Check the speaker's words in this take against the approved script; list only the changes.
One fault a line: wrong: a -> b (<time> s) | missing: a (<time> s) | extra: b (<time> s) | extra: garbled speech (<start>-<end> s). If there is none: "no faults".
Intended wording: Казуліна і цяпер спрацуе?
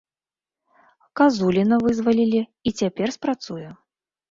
extra: вызвалілі (1.9 s)